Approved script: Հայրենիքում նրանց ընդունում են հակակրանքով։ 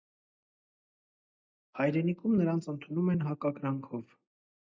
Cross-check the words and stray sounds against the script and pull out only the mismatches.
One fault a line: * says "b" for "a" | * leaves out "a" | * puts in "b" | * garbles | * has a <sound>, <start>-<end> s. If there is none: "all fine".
all fine